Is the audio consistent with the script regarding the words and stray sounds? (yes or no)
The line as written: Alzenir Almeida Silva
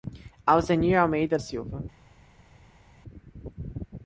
yes